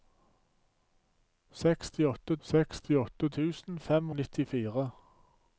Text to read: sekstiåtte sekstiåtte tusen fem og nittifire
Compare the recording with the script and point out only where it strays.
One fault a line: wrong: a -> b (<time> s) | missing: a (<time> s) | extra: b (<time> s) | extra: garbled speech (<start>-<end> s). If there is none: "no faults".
no faults